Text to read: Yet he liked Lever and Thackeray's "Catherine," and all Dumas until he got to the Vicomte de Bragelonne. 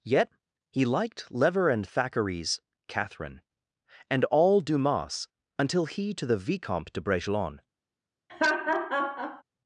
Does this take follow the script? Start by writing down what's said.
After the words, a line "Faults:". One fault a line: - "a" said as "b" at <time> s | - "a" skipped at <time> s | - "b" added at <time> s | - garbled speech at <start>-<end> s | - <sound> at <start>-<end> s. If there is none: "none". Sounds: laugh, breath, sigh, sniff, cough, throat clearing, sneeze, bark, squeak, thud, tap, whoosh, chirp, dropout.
Yet he liked Lever and Thackeray's "Catherine," and all Dumas until he to the Vicomte de Bragelonne.
Faults:
- "got" skipped at 6.1 s
- laugh at 8.3-9.4 s